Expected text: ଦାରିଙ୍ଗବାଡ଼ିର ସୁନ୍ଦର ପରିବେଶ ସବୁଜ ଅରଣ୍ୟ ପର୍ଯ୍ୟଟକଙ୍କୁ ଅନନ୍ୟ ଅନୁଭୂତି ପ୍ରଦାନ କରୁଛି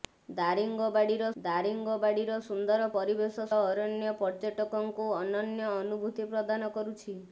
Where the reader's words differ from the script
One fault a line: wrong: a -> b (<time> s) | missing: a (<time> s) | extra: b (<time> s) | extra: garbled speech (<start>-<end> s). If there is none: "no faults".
extra: ଦାରିଙ୍ଗବାଡ଼ିର (1.4 s)
missing: ସବୁଜ (3.4 s)